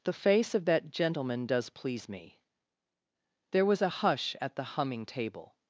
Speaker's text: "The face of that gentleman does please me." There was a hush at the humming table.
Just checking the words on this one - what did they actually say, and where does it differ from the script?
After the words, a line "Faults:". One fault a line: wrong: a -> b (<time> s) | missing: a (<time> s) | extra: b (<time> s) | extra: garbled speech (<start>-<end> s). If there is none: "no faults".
"The face of that gentleman does please me." There was a hush at the humming table.
Faults:
no faults